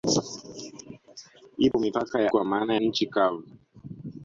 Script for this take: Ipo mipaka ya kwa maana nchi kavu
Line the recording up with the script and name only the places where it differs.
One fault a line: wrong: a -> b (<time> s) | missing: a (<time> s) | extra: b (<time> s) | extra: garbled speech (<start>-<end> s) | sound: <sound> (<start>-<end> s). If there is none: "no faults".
sound: dropout (1.7-1.7 s)